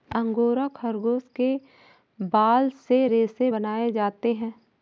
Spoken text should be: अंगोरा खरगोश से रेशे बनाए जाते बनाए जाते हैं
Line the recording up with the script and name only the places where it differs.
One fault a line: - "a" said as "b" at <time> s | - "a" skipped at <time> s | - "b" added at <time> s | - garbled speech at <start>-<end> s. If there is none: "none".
- "के बाल" added at 1.4 s
- "बनाए जाते" skipped at 4.3 s